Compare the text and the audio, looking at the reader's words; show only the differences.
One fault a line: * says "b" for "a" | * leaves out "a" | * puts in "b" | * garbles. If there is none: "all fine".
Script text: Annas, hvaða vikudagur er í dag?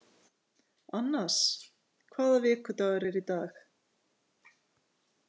all fine